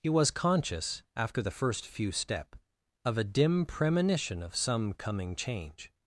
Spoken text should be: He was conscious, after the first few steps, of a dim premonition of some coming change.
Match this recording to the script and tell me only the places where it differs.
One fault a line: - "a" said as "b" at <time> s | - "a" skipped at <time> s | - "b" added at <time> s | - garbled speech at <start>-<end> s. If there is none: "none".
- "steps" said as "step" at 2.1 s